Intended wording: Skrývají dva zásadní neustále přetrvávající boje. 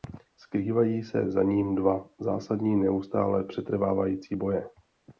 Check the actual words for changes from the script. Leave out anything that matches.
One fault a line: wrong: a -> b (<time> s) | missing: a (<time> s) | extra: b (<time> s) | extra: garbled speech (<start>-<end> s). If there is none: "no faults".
extra: se za ním (1.0 s)